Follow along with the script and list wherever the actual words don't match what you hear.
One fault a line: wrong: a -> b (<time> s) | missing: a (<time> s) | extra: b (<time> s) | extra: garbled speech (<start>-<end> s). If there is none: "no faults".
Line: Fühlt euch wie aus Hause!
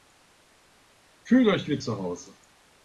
wrong: aus -> zu (1.8 s)